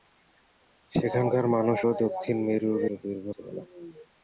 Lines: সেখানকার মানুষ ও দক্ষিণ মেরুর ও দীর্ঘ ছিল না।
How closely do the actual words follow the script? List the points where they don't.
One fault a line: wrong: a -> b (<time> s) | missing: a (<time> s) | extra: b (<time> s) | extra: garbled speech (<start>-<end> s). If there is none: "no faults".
no faults